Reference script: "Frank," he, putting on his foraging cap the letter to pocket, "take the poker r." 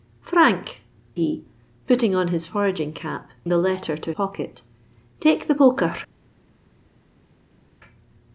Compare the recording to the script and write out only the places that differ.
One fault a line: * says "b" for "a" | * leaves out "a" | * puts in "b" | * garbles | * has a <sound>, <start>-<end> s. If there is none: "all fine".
all fine